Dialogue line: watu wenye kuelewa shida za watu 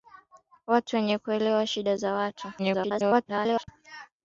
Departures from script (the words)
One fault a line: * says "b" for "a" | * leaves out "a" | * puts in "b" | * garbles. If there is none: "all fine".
* garbles